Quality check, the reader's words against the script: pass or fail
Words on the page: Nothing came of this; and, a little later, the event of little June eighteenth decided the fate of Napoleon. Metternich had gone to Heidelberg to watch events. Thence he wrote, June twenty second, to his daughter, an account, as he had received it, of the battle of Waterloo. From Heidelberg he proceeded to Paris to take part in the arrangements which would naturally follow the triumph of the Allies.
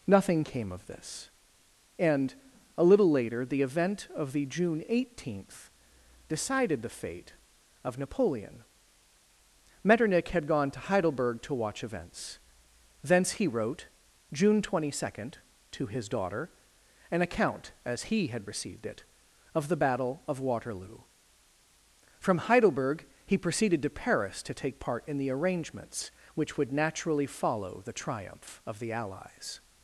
fail